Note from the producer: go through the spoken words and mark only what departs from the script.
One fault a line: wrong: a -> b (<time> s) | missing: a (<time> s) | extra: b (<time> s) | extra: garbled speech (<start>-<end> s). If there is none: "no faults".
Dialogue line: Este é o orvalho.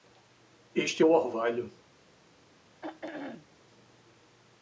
no faults